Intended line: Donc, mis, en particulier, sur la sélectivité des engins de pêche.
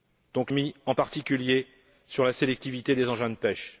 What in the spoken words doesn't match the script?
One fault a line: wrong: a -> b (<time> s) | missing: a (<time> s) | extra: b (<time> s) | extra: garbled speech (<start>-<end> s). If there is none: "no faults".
no faults